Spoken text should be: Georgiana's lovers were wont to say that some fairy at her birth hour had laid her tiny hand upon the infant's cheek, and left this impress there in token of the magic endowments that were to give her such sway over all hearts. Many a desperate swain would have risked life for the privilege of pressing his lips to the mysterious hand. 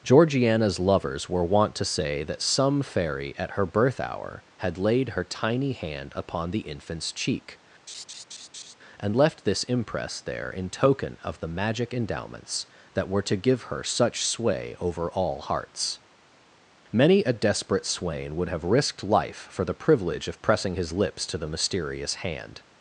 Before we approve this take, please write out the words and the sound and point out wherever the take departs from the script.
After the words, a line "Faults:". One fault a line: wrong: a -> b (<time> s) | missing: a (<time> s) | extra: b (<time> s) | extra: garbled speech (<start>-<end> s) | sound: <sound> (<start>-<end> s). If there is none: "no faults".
Georgiana's lovers were wont to say that some fairy at her birth hour had laid her tiny hand upon the infant's cheek, and left this impress there in token of the magic endowments that were to give her such sway over all hearts. Many a desperate swain would have risked life for the privilege of pressing his lips to the mysterious hand.
Faults:
sound: laugh (7.9-8.7 s)